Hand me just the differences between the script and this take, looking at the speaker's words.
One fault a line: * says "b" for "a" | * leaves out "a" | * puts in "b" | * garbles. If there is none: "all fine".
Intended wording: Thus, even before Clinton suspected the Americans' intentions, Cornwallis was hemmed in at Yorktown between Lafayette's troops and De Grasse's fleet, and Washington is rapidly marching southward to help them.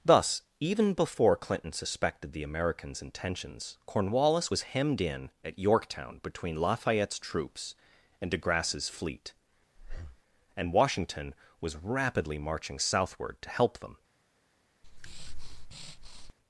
* says "was" for "is"